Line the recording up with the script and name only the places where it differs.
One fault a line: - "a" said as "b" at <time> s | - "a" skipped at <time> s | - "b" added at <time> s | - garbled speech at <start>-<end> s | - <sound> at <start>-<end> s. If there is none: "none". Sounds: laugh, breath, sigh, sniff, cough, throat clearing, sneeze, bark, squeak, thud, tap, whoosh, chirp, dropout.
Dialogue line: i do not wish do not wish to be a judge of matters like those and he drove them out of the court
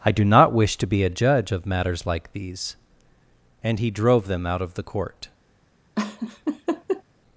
- "do not wish" skipped at 0.8 s
- "those" said as "these" at 2.3 s
- laugh at 6.0-7.0 s